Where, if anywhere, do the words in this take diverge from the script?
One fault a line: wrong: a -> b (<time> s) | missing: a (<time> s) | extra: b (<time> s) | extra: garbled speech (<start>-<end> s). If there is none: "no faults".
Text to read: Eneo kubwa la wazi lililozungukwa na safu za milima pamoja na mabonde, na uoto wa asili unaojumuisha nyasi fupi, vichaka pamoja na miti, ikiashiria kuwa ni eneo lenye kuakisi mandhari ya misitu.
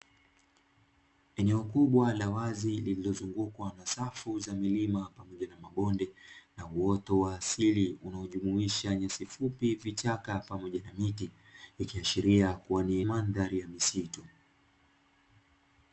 missing: eneo lenye kuakisi (13.0 s)